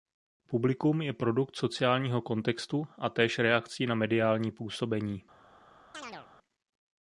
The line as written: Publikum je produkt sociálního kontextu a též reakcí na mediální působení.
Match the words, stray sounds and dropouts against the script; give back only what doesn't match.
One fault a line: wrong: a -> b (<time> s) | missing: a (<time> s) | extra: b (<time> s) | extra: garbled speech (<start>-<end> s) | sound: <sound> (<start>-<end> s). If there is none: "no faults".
sound: chirp (5.9-6.3 s)